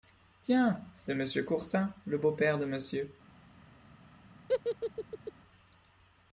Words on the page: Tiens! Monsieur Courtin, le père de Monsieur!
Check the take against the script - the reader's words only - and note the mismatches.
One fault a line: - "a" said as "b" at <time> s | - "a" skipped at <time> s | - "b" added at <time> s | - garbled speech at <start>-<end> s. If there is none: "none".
- "c'est" added at 0.9 s
- "beau" added at 2.2 s